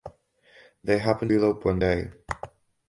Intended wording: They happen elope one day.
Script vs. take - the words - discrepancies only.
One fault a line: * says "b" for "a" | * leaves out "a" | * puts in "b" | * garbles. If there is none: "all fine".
all fine